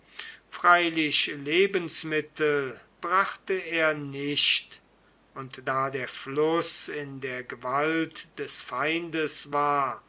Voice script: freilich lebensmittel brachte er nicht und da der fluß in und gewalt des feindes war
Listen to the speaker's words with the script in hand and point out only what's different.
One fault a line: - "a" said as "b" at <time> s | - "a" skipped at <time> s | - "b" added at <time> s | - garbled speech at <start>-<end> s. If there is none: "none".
- "und" said as "der" at 7.2 s